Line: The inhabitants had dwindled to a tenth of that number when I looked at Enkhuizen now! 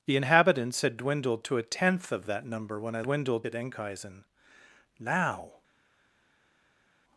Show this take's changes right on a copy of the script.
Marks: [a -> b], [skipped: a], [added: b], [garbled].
The inhabitants had dwindled to a tenth of that number when I [looked -> dwindled] at Enkhuizen now!